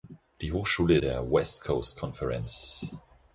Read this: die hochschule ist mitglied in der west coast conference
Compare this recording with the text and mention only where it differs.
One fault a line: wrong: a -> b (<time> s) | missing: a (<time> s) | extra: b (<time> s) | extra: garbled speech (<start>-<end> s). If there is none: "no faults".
missing: ist mitglied in (1.0 s)